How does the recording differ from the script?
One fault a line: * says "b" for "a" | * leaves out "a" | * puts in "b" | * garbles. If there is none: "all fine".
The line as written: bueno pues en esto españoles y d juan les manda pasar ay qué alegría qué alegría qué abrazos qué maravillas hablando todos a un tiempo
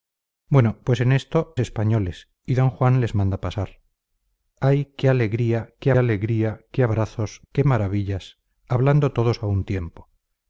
all fine